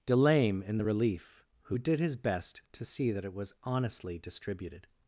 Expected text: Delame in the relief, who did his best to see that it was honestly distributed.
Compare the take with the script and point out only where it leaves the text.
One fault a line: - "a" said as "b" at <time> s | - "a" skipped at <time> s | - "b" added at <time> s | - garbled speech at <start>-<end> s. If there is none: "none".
none